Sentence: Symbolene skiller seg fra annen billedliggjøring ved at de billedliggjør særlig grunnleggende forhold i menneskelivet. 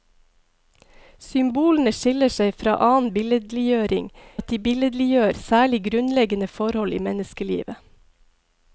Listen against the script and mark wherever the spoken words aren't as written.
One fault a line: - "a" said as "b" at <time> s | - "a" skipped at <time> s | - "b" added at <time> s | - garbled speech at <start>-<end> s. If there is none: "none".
- "ved" skipped at 4.1 s